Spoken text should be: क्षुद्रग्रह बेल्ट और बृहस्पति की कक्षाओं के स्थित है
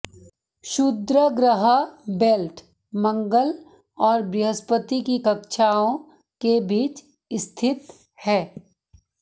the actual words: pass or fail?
fail